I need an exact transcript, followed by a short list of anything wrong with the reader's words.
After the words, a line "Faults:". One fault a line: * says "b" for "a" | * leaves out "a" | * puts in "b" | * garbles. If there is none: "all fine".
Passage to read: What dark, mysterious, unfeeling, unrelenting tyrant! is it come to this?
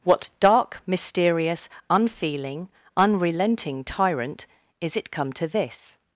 What dark, mysterious, unfeeling, unrelenting tyrant! is it come to this?
Faults:
all fine